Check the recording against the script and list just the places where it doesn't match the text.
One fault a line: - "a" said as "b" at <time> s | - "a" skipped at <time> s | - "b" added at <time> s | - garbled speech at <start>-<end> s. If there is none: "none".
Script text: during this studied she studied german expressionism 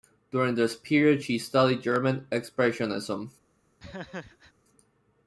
- "studied" said as "period" at 0.8 s